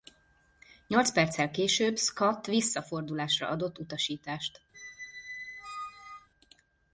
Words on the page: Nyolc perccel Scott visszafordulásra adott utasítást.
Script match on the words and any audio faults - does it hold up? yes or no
no